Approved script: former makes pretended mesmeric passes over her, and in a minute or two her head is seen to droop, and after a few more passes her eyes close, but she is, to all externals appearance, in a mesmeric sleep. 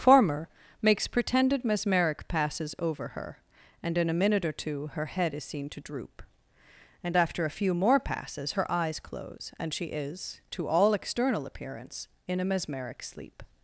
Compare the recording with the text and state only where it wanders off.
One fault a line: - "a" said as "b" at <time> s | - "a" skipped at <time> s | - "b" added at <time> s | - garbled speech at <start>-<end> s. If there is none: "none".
- "but" said as "and" at 9.6 s
- "externals" said as "external" at 10.9 s